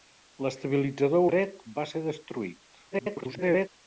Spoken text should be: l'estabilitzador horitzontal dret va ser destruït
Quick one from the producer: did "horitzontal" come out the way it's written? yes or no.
no